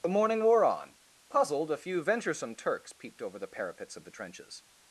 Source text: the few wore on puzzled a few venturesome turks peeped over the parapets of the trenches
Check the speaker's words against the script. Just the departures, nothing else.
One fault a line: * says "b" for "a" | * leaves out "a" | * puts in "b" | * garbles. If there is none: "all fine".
* says "morning" for "few"